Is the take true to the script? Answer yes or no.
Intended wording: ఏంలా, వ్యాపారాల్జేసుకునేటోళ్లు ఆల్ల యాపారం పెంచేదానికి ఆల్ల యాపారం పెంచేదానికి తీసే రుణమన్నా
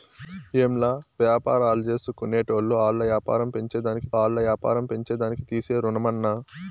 yes